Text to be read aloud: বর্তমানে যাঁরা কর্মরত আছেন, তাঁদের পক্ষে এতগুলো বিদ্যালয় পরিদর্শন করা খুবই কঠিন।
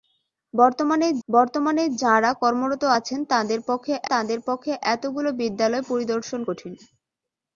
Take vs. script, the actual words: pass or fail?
fail